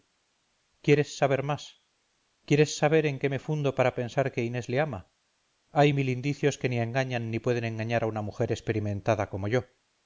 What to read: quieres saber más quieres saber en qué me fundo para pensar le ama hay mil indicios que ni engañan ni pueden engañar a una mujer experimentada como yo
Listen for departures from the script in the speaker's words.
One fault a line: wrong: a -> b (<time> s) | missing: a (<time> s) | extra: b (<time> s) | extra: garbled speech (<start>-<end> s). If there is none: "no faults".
extra: que inés (4.3 s)